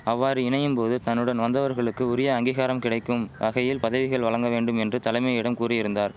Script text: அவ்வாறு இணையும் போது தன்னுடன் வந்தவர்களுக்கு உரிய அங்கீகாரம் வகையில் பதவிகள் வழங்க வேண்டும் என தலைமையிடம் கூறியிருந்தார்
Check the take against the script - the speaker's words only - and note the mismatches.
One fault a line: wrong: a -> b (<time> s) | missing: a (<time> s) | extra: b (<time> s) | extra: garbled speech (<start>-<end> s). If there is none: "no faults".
extra: கிடைக்கும் (2.8 s)
wrong: என -> என்று (4.8 s)